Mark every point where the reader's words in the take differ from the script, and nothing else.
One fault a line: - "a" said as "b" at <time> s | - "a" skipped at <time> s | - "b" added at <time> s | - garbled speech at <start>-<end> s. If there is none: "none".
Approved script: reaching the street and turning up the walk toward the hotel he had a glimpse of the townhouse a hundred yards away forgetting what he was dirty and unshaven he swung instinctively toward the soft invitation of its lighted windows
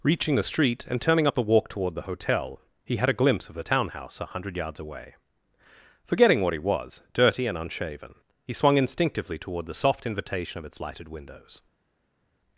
none